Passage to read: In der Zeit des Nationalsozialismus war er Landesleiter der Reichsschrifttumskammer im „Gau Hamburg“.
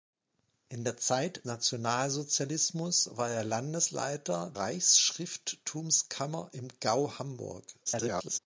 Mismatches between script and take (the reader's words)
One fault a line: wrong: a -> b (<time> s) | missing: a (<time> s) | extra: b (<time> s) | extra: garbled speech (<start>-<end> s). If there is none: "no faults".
missing: des (1.4 s)
missing: der (4.5 s)
extra: garbled speech (7.9-8.4 s)